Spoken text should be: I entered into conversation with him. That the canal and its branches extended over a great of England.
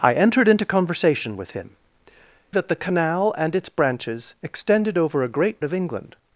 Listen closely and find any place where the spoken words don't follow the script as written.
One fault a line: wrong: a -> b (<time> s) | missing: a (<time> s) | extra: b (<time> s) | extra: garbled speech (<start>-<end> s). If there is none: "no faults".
no faults